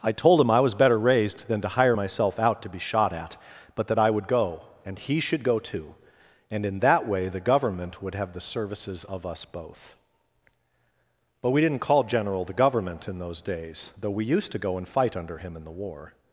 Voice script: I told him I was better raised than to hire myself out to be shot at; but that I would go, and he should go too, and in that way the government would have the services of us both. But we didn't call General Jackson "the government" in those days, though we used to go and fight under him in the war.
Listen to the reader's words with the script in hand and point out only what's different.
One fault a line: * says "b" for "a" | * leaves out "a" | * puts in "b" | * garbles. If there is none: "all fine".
* leaves out "Jackson"